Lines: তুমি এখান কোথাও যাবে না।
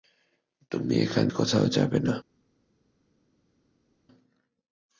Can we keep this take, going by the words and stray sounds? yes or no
yes